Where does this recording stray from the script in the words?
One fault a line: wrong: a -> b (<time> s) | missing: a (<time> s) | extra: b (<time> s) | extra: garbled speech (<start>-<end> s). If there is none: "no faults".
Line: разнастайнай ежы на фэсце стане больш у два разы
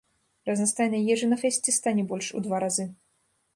no faults